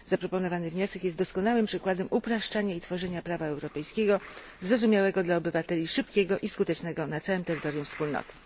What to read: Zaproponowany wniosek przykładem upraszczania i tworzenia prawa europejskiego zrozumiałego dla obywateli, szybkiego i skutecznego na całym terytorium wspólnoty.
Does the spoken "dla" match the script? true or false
true